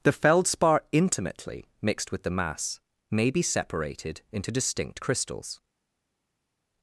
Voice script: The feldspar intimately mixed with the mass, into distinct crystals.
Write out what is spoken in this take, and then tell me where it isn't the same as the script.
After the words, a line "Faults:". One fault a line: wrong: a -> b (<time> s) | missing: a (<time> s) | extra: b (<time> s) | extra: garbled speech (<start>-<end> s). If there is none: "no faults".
The feldspar intimately mixed with the mass, may be separated into distinct crystals.
Faults:
extra: may be separated (3.1 s)